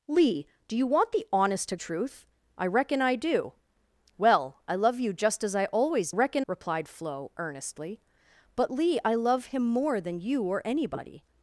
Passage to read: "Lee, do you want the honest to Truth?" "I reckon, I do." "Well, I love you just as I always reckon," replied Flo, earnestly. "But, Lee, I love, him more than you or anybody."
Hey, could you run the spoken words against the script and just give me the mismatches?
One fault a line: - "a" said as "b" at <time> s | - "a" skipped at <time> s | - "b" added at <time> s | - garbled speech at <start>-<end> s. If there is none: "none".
none